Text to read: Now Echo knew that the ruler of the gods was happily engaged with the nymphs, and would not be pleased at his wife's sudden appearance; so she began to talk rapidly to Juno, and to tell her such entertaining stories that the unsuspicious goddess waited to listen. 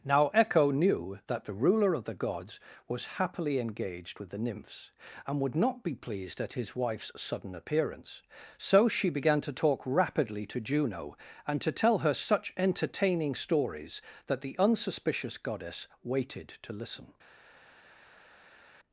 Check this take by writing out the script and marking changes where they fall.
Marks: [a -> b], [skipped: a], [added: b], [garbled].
Now Echo knew that the ruler of the gods was happily engaged with the nymphs, and would not be pleased at his wife's sudden appearance; so she began to talk rapidly to Juno, and to tell her such entertaining stories that the unsuspicious goddess waited to listen.